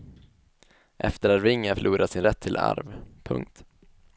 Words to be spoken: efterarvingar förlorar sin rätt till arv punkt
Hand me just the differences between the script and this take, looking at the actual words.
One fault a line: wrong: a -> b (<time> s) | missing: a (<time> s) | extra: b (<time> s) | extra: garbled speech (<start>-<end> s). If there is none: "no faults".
no faults